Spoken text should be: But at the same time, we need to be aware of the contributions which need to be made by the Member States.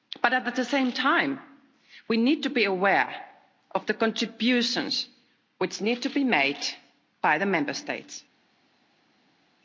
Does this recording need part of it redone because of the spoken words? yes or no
no